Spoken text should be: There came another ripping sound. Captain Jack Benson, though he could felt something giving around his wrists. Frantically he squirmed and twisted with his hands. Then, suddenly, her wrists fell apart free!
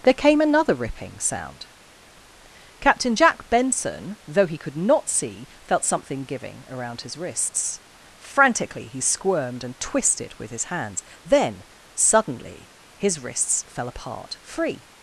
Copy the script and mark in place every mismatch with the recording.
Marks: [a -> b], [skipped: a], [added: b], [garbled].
There came another ripping sound. Captain Jack Benson, though he could [added: not see] felt something giving around his wrists. Frantically he squirmed and twisted with his hands. Then, suddenly, [her -> his] wrists fell apart free!